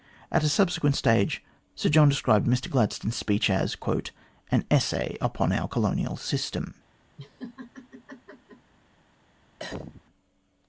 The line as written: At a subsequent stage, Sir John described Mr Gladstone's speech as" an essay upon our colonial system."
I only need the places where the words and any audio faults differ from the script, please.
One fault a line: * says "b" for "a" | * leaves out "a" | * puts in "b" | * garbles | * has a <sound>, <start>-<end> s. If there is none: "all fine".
* has a laugh, 7.2-8.7 s
* has a cough, 9.6-10.0 s